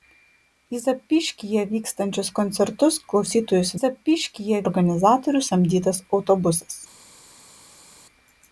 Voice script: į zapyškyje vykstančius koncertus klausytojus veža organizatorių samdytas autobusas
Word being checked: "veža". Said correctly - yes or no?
no